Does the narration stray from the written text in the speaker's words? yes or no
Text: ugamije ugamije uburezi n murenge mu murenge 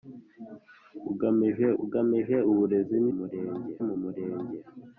no